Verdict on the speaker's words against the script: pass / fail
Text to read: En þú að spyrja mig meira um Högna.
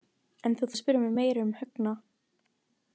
pass